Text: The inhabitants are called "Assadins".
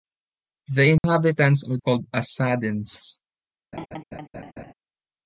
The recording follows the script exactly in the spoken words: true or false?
true